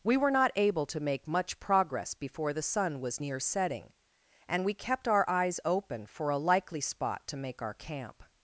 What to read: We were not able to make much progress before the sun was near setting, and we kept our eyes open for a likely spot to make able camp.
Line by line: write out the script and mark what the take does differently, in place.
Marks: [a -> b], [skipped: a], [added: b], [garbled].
We were not able to make much progress before the sun was near setting, and we kept our eyes open for a likely spot to make [able -> our] camp.